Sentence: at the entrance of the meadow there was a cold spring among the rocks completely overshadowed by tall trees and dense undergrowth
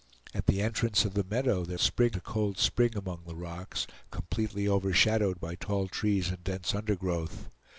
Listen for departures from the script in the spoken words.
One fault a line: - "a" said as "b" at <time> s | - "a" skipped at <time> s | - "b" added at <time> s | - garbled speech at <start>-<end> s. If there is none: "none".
- "was" said as "spring" at 1.8 s